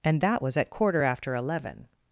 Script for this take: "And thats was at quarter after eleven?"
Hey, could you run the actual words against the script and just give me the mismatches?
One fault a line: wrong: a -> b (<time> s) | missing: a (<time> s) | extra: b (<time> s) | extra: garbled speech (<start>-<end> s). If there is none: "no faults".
wrong: thats -> that (0.2 s)